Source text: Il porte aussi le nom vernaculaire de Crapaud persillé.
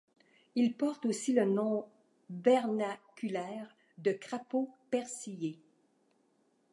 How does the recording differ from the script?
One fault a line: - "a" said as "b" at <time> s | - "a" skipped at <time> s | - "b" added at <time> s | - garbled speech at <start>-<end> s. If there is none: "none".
none